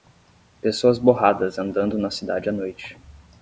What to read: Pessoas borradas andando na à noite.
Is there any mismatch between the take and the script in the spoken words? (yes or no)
yes